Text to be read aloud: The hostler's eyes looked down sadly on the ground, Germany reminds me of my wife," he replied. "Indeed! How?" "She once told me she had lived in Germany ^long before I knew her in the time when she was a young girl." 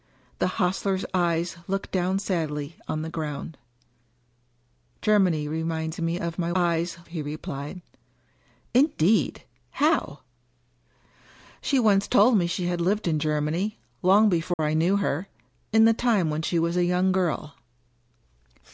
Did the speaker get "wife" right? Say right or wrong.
wrong